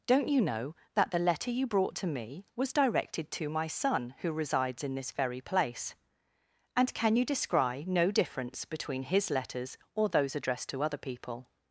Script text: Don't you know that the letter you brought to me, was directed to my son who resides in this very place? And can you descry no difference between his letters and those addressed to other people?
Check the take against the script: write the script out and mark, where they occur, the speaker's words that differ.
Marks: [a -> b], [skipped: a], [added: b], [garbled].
Don't you know that the letter you brought to me, was directed to my son who resides in this very place? And can you descry no difference between his letters [and -> or] those addressed to other people?